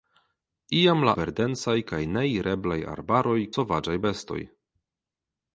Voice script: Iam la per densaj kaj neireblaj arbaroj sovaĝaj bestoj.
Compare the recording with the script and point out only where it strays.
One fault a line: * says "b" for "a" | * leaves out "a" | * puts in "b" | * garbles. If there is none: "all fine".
all fine